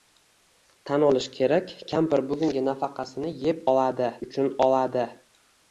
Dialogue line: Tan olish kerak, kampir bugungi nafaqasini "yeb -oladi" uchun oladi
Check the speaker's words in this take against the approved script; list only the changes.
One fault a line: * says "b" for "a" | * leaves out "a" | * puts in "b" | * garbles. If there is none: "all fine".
all fine